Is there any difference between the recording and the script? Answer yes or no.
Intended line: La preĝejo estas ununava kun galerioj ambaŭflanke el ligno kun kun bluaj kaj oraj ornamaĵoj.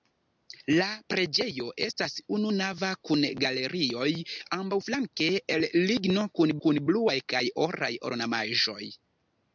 no